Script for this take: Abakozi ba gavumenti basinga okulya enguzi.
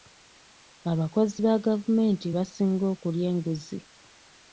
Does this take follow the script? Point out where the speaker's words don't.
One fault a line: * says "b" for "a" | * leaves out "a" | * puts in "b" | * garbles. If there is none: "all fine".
all fine